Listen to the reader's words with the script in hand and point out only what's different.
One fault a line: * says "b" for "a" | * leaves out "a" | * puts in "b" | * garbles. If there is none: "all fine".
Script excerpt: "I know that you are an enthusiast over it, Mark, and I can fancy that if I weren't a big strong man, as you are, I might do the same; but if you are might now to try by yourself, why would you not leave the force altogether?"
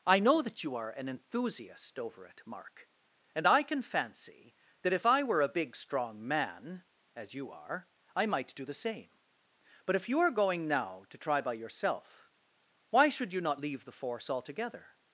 * says "were" for "weren't"
* says "going" for "might"
* says "should" for "would"